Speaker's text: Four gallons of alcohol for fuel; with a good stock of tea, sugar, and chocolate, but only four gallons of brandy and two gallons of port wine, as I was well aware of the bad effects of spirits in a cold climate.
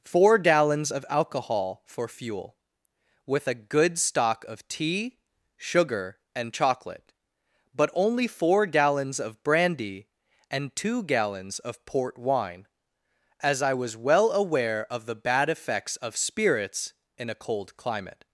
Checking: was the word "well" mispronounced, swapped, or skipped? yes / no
no